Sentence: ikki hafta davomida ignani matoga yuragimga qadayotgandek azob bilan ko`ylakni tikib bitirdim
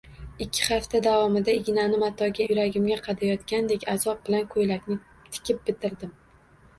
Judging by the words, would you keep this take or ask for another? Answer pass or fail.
pass